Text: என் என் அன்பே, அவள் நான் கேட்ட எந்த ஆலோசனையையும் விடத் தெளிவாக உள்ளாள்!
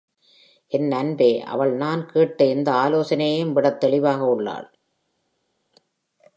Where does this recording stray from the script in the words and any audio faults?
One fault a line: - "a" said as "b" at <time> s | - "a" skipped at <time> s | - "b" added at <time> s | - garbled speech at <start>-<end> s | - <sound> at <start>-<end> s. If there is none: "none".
- "என்" skipped at 0.9 s